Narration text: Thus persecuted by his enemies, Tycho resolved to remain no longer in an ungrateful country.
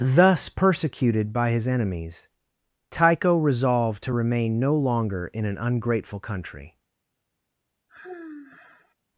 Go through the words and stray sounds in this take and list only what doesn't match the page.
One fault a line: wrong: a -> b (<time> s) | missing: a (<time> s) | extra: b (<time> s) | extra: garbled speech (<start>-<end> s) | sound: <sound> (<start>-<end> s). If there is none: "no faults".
sound: sigh (7.9-8.9 s)